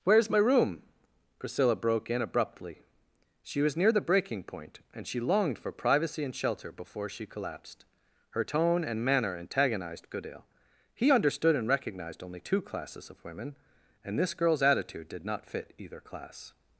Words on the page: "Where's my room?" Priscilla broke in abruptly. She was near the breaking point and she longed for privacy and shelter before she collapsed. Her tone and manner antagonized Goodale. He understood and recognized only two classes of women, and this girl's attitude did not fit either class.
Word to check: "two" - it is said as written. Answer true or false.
true